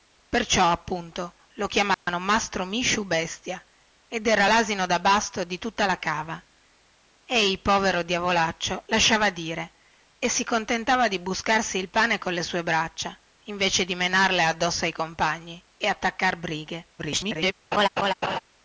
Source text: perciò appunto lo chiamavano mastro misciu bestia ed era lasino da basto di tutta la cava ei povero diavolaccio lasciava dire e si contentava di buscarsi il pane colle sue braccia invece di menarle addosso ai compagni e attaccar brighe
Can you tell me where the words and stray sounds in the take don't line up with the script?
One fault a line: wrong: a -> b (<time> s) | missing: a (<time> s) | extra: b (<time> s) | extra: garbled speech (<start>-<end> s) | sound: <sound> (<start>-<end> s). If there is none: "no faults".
sound: dropout (1.9-2.1 s)
extra: garbled speech (17.0-17.5 s)
sound: laugh (17.7-18.4 s)